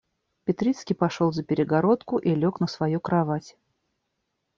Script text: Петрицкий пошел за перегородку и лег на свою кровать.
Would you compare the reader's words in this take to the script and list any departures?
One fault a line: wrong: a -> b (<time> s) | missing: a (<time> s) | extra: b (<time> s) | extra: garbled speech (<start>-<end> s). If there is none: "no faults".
no faults